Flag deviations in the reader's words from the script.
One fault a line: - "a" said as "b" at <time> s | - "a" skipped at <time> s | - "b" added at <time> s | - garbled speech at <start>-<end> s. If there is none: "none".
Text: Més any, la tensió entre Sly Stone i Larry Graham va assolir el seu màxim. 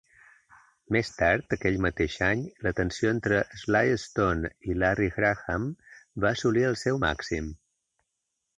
- "tard aquell mateix" added at 1.2 s